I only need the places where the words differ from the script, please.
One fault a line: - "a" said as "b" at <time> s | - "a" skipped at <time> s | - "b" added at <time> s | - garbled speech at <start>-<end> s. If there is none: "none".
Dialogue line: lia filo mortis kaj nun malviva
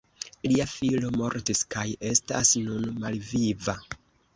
- "estas" added at 2.1 s